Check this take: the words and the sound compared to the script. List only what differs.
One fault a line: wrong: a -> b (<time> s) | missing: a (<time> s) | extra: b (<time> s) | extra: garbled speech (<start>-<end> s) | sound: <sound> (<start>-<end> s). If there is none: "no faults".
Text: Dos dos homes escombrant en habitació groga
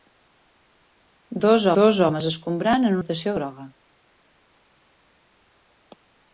no faults